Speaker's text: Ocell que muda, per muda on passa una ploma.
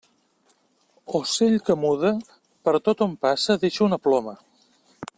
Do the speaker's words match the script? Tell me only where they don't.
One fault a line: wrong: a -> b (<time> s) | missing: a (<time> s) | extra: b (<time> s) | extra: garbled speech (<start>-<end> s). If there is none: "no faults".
wrong: muda -> tot (2.9 s)
extra: deixa (3.7 s)